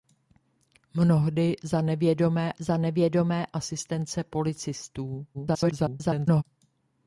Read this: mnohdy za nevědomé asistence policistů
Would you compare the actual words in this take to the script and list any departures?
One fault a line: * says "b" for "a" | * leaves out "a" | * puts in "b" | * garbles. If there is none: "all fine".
* puts in "za nevědomé"
* garbles